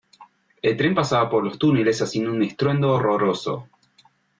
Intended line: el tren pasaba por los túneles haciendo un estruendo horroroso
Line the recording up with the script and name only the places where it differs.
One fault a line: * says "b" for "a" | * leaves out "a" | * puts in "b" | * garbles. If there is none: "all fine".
all fine